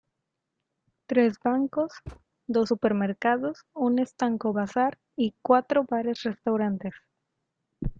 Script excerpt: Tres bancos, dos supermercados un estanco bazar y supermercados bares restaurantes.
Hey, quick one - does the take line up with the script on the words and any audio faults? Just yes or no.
no